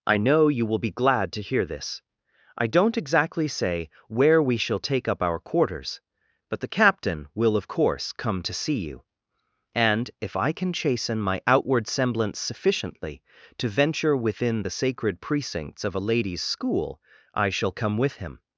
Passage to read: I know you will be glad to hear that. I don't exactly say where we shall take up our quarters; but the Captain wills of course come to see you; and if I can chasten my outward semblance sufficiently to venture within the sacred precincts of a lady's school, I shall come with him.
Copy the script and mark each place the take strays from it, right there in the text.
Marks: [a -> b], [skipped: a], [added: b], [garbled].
I know you will be glad to hear [that. -> this] I don't exactly say where we shall take up our quarters; but the Captain [wills -> will] of course come to see you; and if I can chasten my outward semblance sufficiently to venture within the sacred precincts of a lady's school, I shall come with him.